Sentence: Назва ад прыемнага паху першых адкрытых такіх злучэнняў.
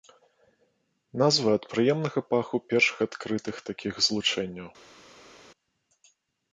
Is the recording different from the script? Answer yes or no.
no